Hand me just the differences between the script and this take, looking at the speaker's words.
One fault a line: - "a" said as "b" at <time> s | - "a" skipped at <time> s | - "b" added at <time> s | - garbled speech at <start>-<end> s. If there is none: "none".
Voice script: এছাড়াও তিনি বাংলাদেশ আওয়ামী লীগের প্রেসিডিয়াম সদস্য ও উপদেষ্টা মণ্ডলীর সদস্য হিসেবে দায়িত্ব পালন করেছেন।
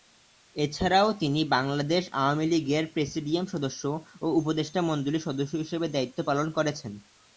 none